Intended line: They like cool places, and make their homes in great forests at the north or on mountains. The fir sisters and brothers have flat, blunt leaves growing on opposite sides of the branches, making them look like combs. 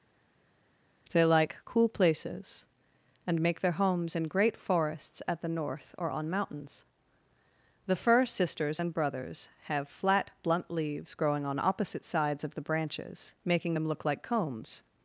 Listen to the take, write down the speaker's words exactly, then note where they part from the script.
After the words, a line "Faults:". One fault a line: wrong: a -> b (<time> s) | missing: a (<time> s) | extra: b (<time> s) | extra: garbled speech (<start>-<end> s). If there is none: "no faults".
They like cool places, and make their homes in great forests at the north or on mountains. The fir sisters and brothers have flat, blunt leaves growing on opposite sides of the branches, making them look like combs.
Faults:
no faults